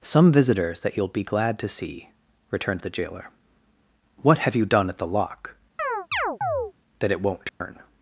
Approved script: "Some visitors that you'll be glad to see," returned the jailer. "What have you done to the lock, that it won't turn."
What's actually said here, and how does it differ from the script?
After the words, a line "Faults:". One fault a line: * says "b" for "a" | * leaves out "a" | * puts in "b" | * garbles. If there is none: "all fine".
"Some visitors that you'll be glad to see," returned the jailer. "What have you done at the lock, that it won't turn."
Faults:
* says "at" for "to"